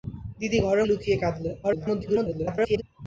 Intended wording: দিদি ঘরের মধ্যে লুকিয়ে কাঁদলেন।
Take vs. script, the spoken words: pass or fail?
fail